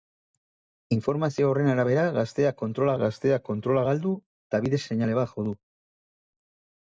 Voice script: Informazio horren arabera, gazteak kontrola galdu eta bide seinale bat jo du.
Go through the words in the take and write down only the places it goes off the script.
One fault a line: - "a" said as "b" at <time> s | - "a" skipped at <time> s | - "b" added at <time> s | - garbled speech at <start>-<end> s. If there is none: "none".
- "gazteak kontrola" added at 3.0 s